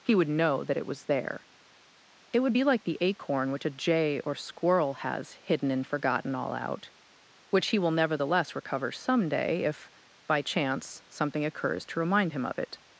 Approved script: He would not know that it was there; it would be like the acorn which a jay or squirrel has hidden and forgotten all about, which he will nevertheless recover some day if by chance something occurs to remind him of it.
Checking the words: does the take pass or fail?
fail